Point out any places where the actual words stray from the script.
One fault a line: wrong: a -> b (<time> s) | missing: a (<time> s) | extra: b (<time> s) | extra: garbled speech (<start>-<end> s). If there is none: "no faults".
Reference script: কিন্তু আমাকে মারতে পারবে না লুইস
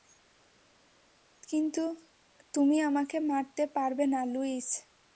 extra: তুমি (2.5 s)